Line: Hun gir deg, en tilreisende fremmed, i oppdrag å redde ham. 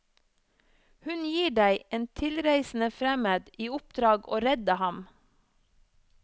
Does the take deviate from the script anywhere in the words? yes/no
no